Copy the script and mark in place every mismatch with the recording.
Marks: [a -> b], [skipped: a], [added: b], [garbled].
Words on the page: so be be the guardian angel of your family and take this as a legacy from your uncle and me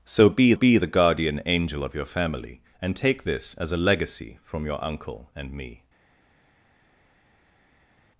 so be be the guardian angel of your family and take this as a legacy from your uncle and me